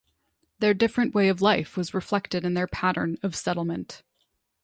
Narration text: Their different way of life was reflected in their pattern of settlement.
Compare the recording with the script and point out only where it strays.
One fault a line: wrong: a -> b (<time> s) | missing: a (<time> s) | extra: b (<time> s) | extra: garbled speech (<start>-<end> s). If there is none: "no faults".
no faults